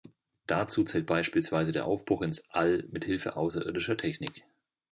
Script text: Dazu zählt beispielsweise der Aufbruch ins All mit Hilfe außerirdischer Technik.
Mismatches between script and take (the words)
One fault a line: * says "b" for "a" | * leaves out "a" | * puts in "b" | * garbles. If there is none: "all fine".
all fine